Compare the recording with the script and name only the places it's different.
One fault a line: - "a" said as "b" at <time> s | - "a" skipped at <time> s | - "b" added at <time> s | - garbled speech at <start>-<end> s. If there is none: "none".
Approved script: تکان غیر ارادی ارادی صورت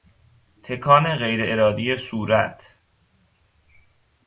- "ارادی" skipped at 2.0 s